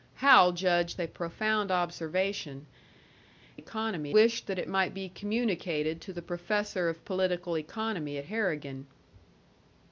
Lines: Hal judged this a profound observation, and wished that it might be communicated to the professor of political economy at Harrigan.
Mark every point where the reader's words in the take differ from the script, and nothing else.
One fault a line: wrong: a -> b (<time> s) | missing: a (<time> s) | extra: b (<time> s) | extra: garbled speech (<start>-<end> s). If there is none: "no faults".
missing: this (1.0 s)
wrong: and -> economy (3.5 s)